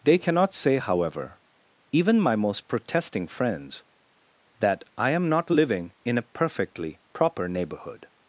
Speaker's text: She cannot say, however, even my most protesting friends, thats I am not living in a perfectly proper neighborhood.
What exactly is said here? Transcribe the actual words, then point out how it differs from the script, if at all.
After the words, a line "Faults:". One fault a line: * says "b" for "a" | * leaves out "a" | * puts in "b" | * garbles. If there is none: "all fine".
They cannot say, however, even my most protesting friends, that I am not living in a perfectly proper neighborhood.
Faults:
* says "They" for "She"
* says "that" for "thats"